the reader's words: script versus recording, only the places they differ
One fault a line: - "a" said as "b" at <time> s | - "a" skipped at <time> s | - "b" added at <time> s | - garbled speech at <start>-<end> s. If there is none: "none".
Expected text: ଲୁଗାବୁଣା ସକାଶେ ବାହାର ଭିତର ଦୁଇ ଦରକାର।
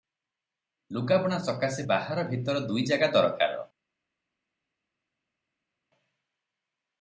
- "ଜାଗା" added at 2.9 s